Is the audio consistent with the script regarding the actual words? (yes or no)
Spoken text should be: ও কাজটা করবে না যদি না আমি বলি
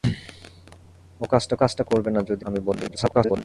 no